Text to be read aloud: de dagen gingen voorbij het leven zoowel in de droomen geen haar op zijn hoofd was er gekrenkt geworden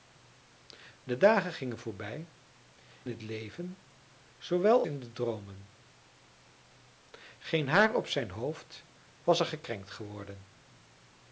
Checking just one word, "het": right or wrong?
right